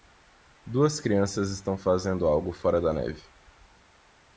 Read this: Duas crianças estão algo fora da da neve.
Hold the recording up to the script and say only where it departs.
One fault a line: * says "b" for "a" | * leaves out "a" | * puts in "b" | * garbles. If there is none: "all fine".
* puts in "fazendo"
* leaves out "da"